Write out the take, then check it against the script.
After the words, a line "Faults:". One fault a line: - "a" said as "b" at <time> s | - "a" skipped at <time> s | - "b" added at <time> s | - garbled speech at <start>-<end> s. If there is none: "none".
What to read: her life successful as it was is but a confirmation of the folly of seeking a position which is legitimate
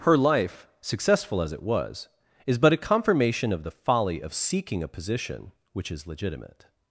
her life successful as it was is but a confirmation of the folly of seeking a position which is legitimate
Faults:
none